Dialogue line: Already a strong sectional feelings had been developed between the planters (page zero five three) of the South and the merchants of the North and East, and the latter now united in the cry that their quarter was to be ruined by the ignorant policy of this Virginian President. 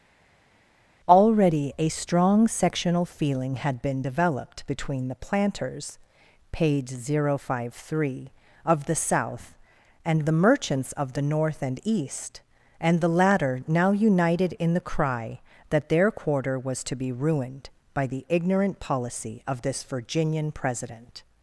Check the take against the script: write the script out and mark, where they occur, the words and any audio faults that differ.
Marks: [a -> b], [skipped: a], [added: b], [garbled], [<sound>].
Already a strong sectional [feelings -> feeling] had been developed between the planters (page zero five three) of the South and the merchants of the North and East, and the latter now united in the cry that their quarter was to be ruined by the ignorant policy of this Virginian President.